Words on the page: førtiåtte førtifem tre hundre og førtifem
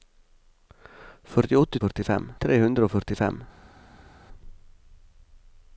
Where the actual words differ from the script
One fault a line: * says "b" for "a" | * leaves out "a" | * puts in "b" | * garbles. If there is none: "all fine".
all fine